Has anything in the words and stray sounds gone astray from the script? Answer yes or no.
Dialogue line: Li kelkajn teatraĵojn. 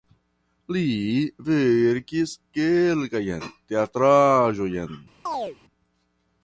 yes